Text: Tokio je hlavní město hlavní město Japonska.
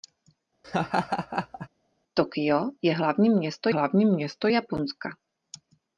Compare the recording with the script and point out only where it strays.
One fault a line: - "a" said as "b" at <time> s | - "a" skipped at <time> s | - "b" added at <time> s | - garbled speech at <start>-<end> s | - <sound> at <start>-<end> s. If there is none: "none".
- laugh at 0.6-1.7 s